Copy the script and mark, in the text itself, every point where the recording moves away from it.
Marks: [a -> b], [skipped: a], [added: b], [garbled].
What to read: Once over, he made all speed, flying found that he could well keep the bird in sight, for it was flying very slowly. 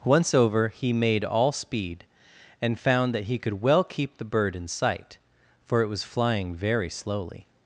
Once over, he made all speed, [flying -> and] found that he could well keep the bird in sight, for it was flying very slowly.